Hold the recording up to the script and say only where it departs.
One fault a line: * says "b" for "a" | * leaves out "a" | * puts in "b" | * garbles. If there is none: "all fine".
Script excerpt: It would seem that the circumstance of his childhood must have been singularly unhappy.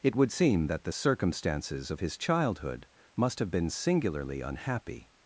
* says "circumstances" for "circumstance"